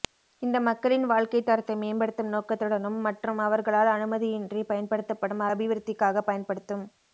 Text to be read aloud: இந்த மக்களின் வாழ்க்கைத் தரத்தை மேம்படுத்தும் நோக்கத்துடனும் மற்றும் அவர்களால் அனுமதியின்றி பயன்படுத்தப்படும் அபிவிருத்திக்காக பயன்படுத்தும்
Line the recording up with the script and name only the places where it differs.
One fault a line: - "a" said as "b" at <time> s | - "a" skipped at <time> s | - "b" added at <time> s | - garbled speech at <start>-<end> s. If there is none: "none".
none